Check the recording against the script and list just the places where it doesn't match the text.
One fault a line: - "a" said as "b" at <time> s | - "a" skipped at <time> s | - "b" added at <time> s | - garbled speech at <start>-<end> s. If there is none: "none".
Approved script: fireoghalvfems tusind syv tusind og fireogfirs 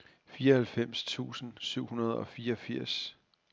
- "tusind" said as "hundrede" at 1.9 s